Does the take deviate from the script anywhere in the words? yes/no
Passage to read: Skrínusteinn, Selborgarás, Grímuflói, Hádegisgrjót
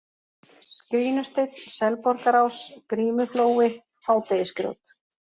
no